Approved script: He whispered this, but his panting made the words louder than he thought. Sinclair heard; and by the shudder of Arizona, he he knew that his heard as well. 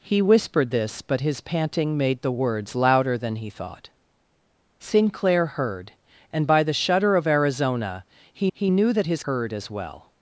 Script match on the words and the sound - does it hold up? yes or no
yes